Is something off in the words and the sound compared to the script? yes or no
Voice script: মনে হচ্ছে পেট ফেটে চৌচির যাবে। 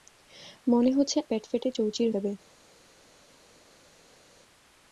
no